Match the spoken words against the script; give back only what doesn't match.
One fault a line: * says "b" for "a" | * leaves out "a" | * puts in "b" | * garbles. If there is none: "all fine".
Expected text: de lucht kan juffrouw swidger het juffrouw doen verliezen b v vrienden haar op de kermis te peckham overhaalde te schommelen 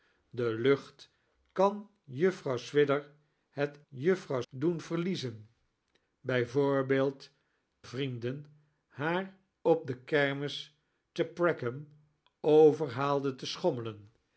all fine